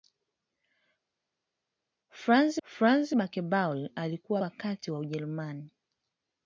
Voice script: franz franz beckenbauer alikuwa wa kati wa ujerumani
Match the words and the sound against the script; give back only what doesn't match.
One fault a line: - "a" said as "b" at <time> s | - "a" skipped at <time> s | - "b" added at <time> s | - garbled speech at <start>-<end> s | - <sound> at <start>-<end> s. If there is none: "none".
none